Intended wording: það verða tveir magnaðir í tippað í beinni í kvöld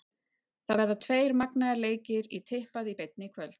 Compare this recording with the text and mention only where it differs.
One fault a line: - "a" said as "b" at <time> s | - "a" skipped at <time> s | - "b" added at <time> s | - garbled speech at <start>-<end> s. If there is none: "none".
- "leikir" added at 1.9 s